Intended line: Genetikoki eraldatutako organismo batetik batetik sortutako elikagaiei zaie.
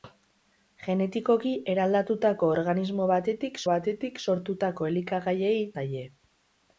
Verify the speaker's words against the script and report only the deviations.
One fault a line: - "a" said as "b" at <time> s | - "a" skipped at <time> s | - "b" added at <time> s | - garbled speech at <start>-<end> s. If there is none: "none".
none